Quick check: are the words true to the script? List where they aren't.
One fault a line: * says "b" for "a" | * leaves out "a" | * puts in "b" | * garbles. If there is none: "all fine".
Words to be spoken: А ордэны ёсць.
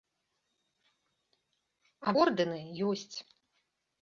all fine